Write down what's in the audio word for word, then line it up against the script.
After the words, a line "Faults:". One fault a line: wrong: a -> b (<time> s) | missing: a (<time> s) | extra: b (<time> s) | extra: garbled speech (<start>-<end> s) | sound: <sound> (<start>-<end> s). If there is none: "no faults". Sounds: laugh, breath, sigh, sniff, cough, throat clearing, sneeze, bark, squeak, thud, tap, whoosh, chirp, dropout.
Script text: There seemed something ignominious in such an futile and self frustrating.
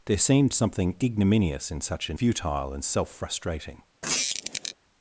There seemed something ignominious in such an futile and self frustrating.
Faults:
sound: squeak (4.0-4.7 s)